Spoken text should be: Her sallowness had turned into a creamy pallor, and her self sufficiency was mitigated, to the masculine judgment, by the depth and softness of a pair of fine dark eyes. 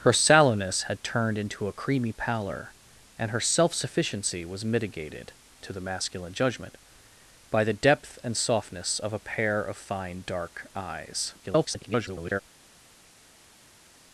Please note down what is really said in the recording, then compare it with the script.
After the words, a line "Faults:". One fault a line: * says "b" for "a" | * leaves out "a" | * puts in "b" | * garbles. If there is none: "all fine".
Her sallowness had turned into a creamy pallor, and her self sufficiency was mitigated, to the masculine judgment, by the depth and softness of a pair of fine dark eyes. [garbled]
Faults:
* garbles